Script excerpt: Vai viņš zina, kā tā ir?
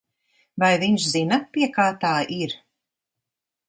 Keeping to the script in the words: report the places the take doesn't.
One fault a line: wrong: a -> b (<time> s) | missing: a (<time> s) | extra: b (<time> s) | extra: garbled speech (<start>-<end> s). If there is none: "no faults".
extra: pie (1.6 s)